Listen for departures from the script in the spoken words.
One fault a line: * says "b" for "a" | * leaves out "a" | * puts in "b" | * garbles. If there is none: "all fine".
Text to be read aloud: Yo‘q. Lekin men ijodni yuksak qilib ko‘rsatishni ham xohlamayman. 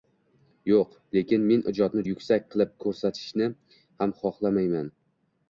all fine